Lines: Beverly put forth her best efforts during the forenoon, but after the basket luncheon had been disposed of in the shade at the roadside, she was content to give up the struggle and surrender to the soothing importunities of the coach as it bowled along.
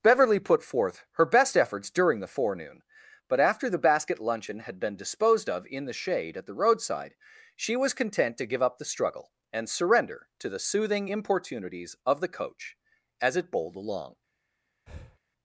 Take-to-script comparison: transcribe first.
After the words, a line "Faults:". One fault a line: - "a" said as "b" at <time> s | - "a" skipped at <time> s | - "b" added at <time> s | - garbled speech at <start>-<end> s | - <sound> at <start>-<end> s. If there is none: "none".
Beverly put forth her best efforts during the forenoon, but after the basket luncheon had been disposed of in the shade at the roadside, she was content to give up the struggle and surrender to the soothing importunities of the coach as it bowled along.
Faults:
- breath at 14.9-15.2 s